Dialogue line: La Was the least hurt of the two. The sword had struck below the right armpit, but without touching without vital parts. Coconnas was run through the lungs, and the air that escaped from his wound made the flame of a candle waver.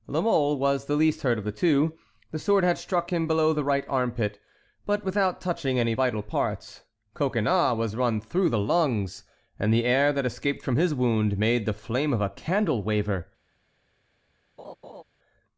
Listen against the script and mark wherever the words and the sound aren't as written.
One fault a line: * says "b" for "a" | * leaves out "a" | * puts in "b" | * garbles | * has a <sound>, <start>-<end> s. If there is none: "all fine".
* puts in "Mole"
* puts in "him"
* says "any" for "without"
* has a laugh, 14.6-15.0 s